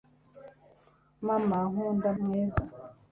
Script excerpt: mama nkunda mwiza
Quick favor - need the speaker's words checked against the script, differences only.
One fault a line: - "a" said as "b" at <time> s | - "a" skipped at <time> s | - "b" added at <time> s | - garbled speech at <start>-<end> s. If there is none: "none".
none